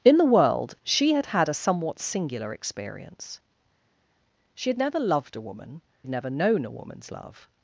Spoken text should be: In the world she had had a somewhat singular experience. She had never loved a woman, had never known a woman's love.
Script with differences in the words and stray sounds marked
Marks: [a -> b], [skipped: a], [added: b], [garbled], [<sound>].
In the world she had had a somewhat singular experience. She had never loved a woman, had never known a woman's love.